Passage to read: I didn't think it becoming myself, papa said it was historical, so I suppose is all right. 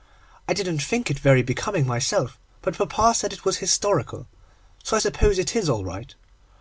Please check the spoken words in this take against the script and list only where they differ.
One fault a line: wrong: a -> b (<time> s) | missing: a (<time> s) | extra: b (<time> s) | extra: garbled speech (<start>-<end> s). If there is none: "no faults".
extra: very (1.2 s)
extra: but (2.6 s)
extra: it (5.4 s)